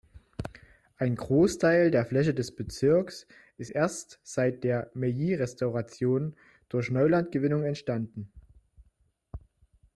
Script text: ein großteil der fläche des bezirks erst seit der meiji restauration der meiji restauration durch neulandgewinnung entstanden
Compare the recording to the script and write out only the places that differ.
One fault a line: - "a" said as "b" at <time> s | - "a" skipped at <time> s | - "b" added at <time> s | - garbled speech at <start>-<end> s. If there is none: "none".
- "ist" added at 3.6 s
- "der meiji restauration" skipped at 6.4 s